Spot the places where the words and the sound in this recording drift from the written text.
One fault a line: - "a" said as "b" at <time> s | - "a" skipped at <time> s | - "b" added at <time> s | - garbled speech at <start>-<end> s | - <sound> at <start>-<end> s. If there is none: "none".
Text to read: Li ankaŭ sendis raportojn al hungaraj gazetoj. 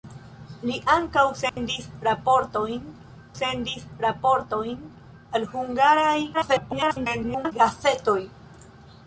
- dropout at 1.5-1.6 s
- "sendis raportojn" added at 3.4 s
- garbled speech at 6.3-7.5 s